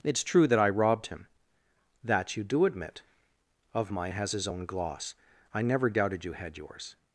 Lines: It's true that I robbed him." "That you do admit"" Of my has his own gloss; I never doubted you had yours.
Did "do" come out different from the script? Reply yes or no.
no